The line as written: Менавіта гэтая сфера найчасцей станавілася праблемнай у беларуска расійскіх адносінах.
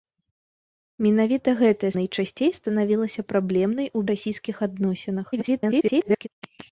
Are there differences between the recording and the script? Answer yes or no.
yes